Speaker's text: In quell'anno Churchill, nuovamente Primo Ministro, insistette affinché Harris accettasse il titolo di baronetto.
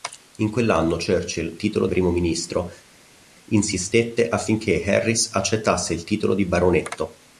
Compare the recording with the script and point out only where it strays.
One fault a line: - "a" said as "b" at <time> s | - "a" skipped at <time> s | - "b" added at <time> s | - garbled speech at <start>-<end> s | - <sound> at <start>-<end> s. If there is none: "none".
- "nuovamente" said as "titolo" at 1.5 s